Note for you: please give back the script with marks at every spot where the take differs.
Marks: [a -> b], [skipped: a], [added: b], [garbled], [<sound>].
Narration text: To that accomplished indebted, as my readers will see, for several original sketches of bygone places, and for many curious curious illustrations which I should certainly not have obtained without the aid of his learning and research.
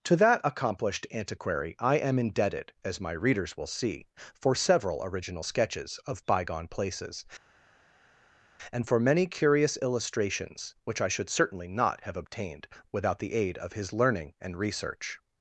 To that accomplished [added: antiquary I am] indebted, as my readers will see, for several original sketches of bygone places, and for many curious [skipped: curious] illustrations which I should certainly not have obtained without the aid of his learning and research.